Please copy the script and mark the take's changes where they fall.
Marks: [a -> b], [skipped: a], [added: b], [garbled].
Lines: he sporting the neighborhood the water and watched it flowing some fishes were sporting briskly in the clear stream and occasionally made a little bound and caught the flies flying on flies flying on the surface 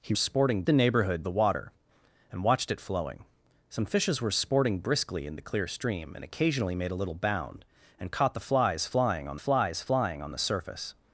he sporting the neighborhood the water and watched it flowing some fishes were sporting briskly in the clear stream and occasionally made a little bound and caught the flies flying on flies flying on the surface